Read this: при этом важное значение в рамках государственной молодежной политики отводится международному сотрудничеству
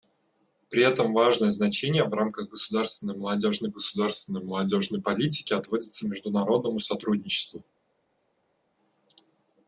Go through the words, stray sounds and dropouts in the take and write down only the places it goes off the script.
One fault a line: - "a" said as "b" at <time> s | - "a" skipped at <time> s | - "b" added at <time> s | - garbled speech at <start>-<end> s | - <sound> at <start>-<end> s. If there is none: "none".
- "государственной молодежной" added at 3.7 s